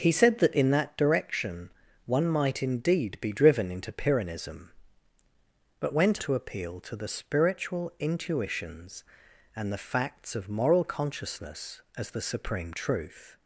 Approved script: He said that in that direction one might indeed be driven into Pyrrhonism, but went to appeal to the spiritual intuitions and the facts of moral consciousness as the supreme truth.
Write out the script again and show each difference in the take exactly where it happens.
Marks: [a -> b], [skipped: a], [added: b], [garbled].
He said that in that direction one might indeed be driven into Pyrrhonism, but went to appeal to the spiritual intuitions and the facts of moral consciousness as the supreme truth.